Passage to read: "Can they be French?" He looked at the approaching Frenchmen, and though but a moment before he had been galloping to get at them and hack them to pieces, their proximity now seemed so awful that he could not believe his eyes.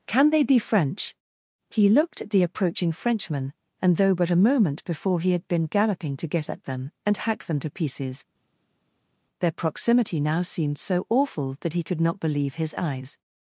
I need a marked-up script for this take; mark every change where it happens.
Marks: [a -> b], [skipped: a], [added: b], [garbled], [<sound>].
"Can they be French?" He looked at the approaching Frenchmen, and though but a moment before he had been galloping to get at them and hack them to pieces, their proximity now seemed so awful that he could not believe his eyes.